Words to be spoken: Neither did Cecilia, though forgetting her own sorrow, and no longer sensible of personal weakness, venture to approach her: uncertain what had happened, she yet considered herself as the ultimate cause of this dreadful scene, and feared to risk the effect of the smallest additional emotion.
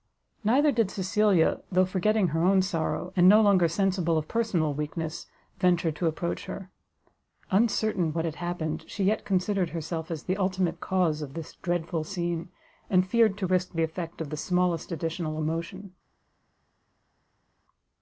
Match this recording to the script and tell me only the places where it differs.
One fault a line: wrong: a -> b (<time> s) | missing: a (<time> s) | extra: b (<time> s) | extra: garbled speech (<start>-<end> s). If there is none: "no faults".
no faults